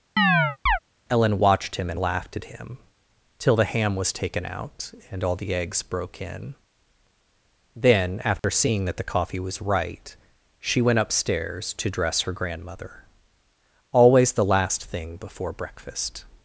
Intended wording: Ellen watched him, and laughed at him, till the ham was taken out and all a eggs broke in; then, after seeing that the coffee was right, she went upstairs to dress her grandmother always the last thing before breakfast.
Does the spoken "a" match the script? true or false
false